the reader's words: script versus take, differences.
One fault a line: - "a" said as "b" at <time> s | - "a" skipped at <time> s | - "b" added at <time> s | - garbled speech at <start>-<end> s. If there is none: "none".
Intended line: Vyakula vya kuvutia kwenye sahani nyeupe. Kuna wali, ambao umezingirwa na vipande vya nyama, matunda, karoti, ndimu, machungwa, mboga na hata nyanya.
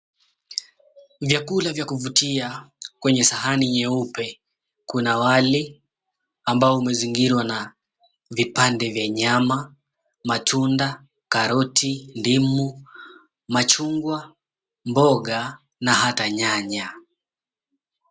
none